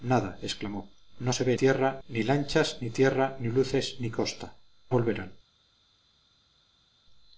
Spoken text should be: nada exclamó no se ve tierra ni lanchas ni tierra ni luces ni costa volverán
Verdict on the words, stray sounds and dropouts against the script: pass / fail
pass